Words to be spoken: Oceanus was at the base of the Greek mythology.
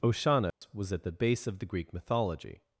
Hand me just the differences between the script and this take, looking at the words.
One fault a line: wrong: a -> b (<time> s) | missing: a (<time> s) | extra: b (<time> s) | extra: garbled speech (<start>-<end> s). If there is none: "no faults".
no faults